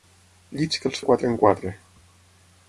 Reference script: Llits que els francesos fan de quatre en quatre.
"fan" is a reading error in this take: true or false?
true